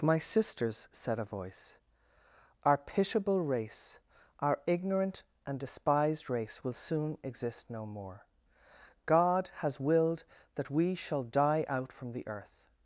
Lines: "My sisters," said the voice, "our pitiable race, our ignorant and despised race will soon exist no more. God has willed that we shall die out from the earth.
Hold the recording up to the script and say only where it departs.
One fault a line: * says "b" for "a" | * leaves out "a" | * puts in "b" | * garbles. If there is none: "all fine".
* says "a" for "the"